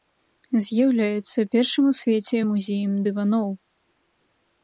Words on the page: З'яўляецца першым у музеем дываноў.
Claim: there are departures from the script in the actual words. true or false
true